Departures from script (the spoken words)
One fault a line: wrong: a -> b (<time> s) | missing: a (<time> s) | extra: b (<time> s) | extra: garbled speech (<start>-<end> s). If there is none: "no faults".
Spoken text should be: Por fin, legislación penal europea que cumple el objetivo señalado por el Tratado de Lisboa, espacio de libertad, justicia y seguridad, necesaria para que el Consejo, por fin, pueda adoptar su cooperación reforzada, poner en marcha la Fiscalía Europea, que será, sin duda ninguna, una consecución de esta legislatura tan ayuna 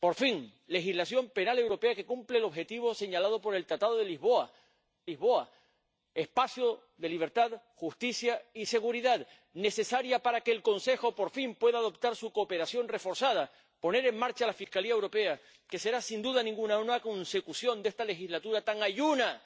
extra: Lisboa (5.1 s)